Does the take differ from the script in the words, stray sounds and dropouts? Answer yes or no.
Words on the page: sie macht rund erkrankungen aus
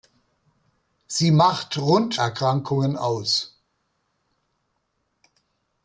no